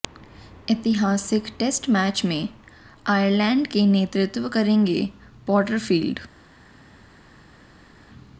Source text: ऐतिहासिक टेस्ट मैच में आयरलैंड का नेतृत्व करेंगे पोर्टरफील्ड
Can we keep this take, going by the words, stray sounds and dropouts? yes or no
yes